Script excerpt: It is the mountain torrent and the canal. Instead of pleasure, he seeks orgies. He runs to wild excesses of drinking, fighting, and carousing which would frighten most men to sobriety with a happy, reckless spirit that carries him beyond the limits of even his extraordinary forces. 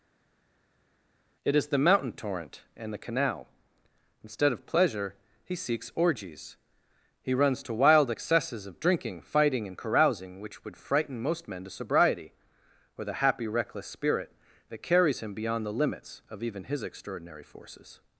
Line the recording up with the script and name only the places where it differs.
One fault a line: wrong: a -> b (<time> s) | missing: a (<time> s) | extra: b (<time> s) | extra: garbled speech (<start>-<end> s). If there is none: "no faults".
wrong: with a -> or the (13.0 s)